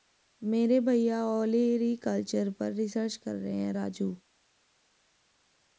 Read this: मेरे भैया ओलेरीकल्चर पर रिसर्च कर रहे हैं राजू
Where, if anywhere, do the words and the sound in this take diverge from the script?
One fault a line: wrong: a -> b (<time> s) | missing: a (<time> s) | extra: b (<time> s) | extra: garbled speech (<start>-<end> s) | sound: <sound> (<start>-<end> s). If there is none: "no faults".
no faults